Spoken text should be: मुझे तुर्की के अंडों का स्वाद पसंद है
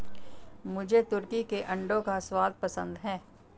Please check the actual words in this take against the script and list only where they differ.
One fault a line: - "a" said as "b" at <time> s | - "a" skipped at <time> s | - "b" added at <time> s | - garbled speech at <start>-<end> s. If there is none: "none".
none